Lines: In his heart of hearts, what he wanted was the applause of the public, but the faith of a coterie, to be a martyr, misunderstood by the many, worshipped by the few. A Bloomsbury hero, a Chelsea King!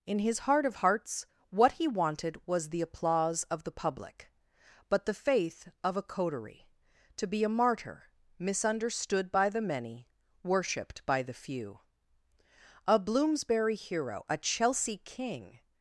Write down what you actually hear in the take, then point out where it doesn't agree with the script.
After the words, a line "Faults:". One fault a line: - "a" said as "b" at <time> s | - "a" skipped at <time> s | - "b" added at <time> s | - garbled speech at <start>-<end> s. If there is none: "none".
In his heart of hearts, what he wanted was the applause of the public, but the faith of a coterie, to be a martyr, misunderstood by the many, worshipped by the few. A Bloomsbury hero, a Chelsea King!
Faults:
none